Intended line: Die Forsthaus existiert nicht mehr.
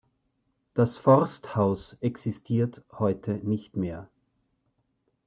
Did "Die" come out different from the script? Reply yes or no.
yes